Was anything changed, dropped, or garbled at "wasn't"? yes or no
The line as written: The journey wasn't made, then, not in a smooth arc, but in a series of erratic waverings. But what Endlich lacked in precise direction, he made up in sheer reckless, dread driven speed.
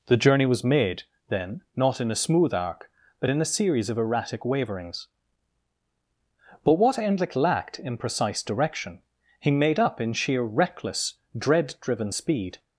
yes